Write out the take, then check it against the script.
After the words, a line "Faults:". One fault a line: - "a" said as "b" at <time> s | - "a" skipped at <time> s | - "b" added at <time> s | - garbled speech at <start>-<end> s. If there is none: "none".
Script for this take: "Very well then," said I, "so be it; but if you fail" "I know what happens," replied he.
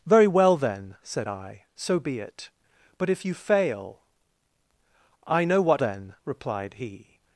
"Very well then," said I, "so be it; but if you fail" "I know what then," replied he.
Faults:
- "happens" said as "then" at 5.8 s